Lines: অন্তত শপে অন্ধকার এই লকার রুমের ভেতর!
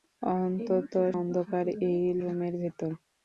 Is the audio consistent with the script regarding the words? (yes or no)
no